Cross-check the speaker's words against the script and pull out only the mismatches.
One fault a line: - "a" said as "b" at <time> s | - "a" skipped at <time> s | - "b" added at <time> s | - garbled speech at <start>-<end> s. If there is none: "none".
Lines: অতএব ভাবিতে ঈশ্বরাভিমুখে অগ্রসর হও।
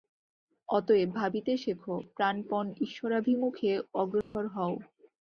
- "শেখ প্রাণপণ" added at 1.6 s